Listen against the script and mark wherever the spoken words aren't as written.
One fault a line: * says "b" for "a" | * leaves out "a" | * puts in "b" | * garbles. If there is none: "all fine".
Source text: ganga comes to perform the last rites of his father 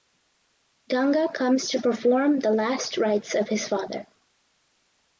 all fine